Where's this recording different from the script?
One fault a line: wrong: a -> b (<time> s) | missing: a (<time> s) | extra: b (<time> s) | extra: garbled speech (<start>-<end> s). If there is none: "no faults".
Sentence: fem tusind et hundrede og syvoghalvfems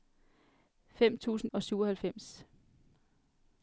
missing: et hundrede (1.5 s)